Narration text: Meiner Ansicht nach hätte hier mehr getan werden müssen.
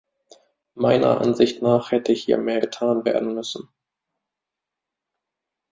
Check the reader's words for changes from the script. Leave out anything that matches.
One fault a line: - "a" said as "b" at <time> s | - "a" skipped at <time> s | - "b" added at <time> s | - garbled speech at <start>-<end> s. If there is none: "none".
none